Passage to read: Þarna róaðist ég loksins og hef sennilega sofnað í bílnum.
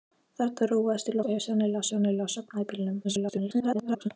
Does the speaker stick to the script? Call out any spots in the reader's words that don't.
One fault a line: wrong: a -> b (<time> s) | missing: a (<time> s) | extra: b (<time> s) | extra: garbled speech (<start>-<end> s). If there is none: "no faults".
missing: loksins (1.2 s)
extra: sennilega (1.9 s)
extra: garbled speech (3.0-4.1 s)